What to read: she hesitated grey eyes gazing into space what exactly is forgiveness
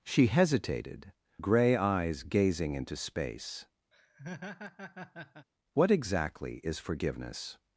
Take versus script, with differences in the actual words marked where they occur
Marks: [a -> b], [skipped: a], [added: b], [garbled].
she hesitated grey eyes gazing into space what exactly is forgiveness